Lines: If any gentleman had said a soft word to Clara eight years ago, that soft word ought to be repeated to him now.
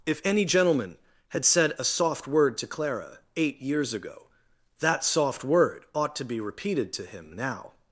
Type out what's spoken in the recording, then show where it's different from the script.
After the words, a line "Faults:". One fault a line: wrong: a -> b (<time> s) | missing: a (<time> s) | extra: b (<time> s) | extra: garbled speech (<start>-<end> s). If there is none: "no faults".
If any gentleman had said a soft word to Clara eight years ago, that soft word ought to be repeated to him now.
Faults:
no faults